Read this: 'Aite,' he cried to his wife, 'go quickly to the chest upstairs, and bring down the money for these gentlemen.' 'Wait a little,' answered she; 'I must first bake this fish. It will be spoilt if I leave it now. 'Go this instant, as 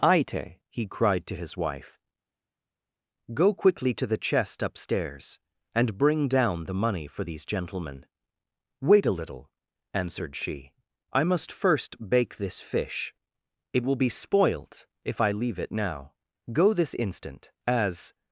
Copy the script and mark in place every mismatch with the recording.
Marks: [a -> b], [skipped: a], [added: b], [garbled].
'Aite,' he cried to his wife, 'go quickly to the chest upstairs, and bring down the money for these gentlemen.' 'Wait a little,' answered she; 'I must first bake this fish. It will be spoilt if I leave it now. 'Go this instant, as